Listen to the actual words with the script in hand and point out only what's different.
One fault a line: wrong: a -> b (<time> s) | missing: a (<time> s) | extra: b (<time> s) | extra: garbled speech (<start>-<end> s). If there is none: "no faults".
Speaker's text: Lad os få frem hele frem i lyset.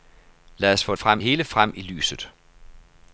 no faults